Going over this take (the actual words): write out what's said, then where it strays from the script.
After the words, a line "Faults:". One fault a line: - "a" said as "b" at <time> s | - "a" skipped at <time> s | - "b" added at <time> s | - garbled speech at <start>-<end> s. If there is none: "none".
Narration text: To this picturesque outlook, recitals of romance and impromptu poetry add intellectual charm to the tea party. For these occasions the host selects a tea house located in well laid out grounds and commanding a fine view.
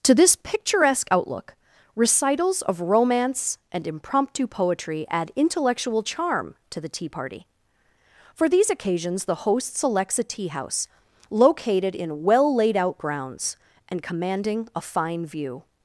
To this picturesque outlook, recitals of romance and impromptu poetry add intellectual charm to the tea party. For these occasions the host selects a tea house located in well laid out grounds and commanding a fine view.
Faults:
none